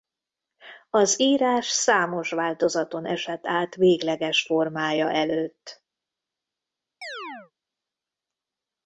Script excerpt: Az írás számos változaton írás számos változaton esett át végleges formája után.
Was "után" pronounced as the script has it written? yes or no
no